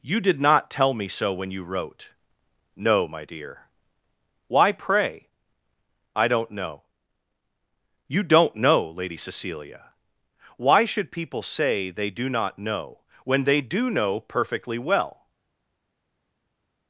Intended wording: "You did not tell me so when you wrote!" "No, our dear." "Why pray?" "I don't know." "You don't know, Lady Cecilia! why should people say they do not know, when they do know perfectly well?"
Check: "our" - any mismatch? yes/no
yes